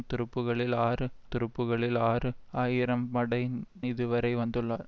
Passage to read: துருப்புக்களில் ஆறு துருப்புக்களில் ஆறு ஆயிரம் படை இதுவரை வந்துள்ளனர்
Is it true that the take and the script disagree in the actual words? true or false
false